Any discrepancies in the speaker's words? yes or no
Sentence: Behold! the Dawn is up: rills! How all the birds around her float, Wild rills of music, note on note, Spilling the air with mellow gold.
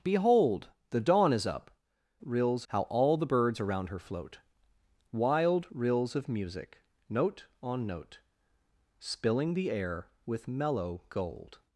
no